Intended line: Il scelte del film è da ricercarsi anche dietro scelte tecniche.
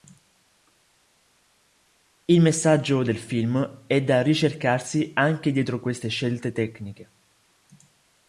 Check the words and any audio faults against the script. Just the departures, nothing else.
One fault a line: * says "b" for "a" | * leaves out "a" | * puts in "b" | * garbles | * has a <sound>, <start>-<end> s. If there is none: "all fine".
* says "messaggio" for "scelte"
* puts in "queste"